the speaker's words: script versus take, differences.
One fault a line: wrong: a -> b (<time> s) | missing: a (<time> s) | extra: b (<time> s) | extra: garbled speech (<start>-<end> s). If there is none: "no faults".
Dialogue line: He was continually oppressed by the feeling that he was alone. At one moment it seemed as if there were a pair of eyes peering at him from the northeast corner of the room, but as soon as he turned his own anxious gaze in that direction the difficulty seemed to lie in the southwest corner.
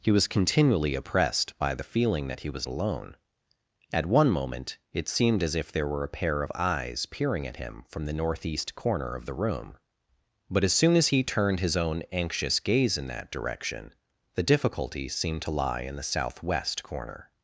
no faults